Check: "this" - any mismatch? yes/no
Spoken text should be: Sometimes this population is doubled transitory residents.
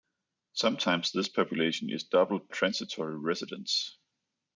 no